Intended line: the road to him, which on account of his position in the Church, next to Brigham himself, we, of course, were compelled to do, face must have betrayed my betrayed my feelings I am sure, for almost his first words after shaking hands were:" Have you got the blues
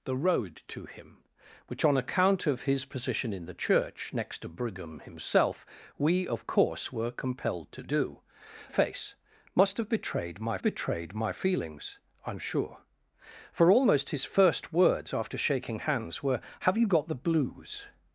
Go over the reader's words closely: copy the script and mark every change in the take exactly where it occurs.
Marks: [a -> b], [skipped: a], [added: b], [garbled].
the road to him, which on account of his position in the Church, next to Brigham himself, we, of course, were compelled to do, face must have betrayed my betrayed my feelings I am sure, for almost his first words after shaking hands were:" Have you got the blues